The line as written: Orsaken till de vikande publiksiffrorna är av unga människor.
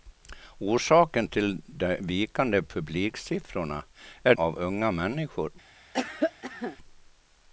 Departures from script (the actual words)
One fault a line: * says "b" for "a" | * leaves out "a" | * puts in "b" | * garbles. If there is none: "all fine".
all fine